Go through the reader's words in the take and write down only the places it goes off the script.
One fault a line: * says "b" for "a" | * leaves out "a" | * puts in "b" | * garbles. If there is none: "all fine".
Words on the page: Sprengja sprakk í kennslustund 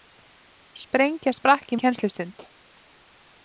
all fine